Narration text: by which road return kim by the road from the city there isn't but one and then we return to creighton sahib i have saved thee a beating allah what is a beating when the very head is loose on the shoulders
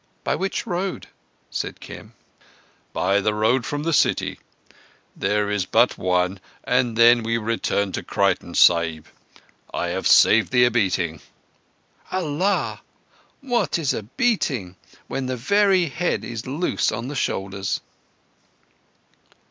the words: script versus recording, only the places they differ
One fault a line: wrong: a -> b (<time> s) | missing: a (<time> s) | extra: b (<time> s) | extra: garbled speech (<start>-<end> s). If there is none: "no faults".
wrong: return -> said (1.5 s)
wrong: isn't -> is (5.5 s)